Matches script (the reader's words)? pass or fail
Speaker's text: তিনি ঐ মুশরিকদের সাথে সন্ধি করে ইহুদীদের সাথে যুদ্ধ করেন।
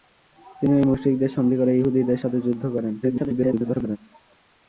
fail